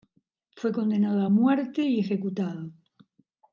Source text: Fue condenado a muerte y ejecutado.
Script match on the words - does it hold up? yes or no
yes